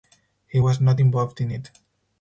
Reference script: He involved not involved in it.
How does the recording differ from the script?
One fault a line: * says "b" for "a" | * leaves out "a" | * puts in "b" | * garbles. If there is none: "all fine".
* says "was" for "involved"